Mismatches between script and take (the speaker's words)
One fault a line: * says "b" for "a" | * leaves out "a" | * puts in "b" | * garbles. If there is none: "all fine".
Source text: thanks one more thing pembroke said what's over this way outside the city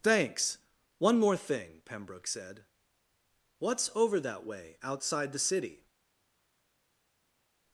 * says "that" for "this"